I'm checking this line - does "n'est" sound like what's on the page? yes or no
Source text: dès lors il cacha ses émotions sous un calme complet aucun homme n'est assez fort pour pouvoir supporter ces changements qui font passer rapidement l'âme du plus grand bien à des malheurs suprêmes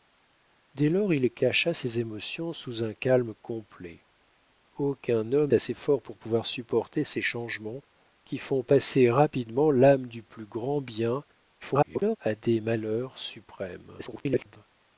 no